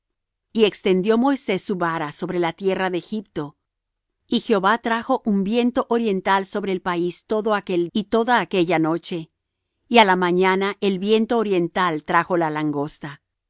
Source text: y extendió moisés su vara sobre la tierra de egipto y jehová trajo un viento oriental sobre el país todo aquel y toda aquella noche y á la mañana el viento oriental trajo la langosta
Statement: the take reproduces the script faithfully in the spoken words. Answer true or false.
true